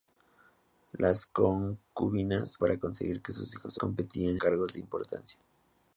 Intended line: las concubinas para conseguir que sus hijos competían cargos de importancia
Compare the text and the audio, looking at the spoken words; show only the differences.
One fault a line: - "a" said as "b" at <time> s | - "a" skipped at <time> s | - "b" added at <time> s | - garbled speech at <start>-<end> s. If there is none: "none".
none